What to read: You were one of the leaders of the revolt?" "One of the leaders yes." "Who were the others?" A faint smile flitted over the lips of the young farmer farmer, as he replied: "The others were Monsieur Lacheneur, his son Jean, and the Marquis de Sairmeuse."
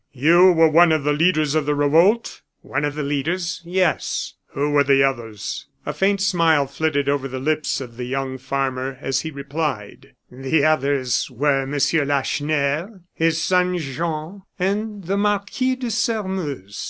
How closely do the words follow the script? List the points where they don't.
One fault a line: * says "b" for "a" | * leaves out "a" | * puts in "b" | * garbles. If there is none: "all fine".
* leaves out "farmer"